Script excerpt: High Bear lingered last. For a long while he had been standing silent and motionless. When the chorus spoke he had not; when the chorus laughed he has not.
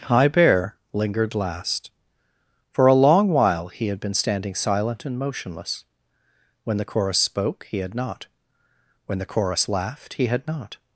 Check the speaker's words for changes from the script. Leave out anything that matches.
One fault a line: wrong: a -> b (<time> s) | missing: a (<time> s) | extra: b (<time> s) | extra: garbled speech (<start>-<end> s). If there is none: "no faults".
wrong: has -> had (10.3 s)